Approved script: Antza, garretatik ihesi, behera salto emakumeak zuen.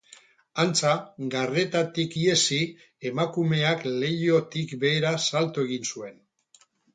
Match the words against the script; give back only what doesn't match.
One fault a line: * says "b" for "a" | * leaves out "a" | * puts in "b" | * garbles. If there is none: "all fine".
* puts in "emakumeak leihotik"
* says "egin" for "emakumeak"